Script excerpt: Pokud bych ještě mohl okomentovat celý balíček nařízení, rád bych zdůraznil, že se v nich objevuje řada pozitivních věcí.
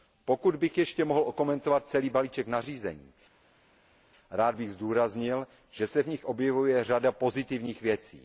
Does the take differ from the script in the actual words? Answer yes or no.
no